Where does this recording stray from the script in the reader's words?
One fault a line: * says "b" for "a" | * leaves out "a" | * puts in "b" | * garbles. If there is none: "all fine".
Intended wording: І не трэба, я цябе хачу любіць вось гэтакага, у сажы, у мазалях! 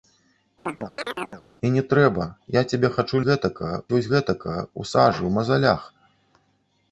* says "гэтакага" for "любіць"